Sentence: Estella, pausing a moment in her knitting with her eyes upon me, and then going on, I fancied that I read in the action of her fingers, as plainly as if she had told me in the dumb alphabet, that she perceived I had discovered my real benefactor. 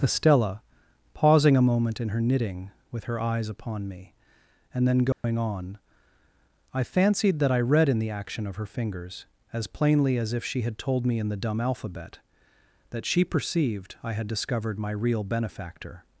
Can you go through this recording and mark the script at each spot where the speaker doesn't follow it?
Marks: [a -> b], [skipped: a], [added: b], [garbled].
Estella, pausing a moment in her knitting with her eyes upon me, and then going on, I fancied that I read in the action of her fingers, as plainly as if she had told me in the dumb alphabet, that she perceived I had discovered my real benefactor.